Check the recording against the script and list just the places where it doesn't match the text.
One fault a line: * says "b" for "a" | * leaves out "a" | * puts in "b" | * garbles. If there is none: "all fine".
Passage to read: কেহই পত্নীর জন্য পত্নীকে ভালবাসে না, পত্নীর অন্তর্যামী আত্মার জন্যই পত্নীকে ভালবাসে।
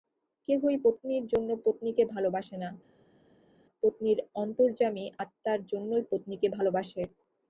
all fine